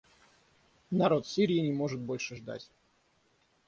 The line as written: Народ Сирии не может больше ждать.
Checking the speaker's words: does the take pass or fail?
pass